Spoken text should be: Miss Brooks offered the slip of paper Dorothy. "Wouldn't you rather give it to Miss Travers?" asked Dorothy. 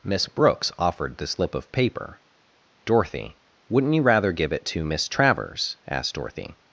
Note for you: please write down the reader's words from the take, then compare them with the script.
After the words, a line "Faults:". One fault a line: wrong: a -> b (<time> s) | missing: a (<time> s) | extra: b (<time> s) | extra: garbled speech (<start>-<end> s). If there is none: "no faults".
Miss Brooks offered the slip of paper Dorothy. "Wouldn't you rather give it to Miss Travers?" asked Dorothy.
Faults:
no faults